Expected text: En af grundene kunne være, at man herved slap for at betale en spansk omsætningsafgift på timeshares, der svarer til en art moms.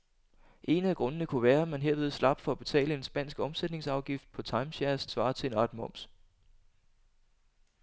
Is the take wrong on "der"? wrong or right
wrong